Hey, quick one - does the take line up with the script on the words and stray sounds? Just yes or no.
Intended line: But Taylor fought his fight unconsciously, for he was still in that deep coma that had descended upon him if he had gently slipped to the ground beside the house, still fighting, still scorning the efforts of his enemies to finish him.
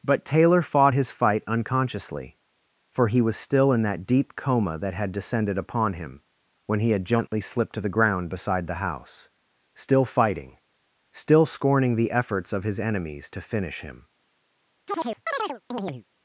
no